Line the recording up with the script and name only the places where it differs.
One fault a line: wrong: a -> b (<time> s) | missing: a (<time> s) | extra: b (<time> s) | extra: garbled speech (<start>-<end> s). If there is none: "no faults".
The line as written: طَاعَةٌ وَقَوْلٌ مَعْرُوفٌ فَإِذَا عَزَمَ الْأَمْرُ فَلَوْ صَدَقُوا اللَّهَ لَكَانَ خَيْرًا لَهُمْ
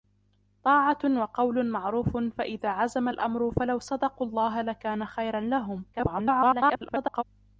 extra: garbled speech (5.9-7.2 s)